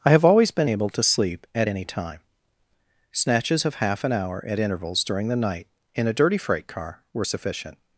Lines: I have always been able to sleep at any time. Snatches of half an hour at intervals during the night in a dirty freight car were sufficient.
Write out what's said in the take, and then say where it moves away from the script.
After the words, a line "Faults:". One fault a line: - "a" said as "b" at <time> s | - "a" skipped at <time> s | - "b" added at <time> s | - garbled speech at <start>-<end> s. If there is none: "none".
I have always been able to sleep at any time. Snatches of half an hour at intervals during the night in a dirty freight car were sufficient.
Faults:
none